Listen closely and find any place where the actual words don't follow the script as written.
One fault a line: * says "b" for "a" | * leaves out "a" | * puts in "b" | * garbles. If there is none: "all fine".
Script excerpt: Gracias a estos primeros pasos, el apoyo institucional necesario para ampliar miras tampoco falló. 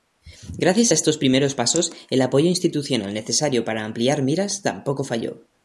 all fine